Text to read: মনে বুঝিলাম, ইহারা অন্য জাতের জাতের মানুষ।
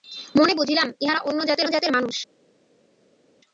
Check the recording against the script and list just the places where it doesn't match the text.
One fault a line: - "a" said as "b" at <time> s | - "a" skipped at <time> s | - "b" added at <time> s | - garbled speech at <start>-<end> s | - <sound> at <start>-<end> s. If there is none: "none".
none